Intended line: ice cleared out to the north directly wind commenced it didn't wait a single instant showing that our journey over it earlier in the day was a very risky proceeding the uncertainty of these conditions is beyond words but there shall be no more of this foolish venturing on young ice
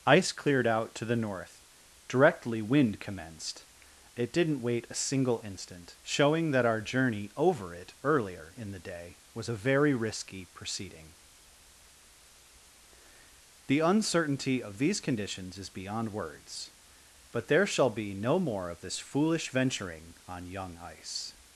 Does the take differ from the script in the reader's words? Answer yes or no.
no